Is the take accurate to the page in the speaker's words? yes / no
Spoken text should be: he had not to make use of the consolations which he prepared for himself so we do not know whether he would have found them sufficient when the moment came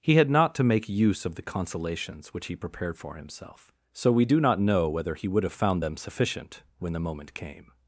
yes